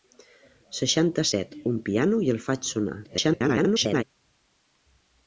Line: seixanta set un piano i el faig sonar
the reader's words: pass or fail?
fail